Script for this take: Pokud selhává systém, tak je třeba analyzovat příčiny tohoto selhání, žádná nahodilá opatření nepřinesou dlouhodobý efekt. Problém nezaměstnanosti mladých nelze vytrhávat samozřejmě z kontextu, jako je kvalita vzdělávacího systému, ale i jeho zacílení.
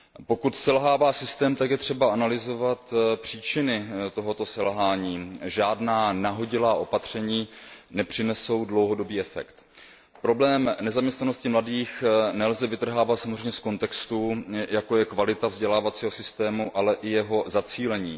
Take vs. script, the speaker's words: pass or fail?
pass